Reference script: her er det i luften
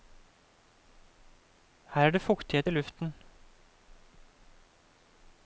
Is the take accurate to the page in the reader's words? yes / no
no